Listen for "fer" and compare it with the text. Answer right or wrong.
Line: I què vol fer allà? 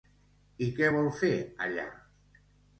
right